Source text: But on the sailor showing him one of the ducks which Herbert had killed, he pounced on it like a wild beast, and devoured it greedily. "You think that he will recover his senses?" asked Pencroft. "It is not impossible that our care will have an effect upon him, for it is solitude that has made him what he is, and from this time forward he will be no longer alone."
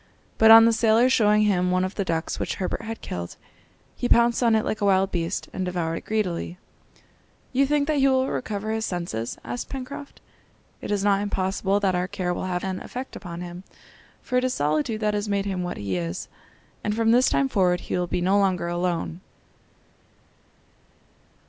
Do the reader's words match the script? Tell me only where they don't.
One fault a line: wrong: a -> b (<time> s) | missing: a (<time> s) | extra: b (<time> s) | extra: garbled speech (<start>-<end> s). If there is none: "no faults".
no faults